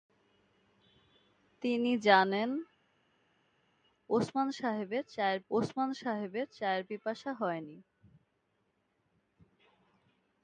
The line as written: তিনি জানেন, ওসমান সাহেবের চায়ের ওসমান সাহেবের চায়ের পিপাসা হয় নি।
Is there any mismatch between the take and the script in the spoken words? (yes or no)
no